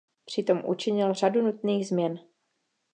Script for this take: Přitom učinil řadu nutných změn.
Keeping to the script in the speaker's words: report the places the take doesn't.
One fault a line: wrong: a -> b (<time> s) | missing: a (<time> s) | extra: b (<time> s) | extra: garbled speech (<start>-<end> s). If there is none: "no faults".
no faults